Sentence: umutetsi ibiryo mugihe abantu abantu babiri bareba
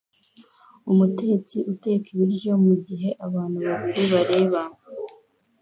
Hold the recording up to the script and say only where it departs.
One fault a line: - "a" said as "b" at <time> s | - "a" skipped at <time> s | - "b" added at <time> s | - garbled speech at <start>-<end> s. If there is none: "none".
- "uteka" added at 1.7 s
- "abantu" skipped at 3.6 s